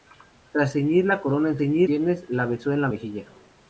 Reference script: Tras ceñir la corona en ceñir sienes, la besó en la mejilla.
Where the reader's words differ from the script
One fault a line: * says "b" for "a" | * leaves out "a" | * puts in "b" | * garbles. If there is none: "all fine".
all fine